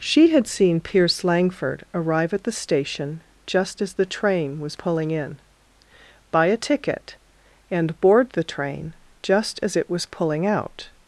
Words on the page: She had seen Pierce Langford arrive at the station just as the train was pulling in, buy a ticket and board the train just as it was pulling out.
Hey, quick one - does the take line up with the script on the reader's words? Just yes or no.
yes